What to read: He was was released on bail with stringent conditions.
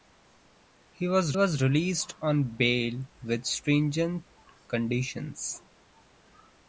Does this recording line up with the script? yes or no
yes